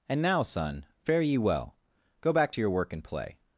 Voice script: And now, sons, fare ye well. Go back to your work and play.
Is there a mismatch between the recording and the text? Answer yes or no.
yes